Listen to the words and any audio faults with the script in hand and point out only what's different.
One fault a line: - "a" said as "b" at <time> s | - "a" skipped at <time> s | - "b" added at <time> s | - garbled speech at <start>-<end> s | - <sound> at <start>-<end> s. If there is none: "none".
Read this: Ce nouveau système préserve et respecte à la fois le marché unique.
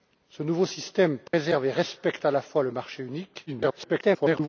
- dropout at 1.3-1.3 s
- garbled speech at 3.5-4.5 s